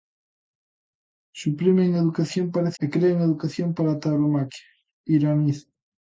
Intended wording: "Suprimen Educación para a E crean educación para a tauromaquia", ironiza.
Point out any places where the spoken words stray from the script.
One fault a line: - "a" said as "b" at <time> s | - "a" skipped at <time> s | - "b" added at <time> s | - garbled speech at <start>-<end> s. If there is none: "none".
none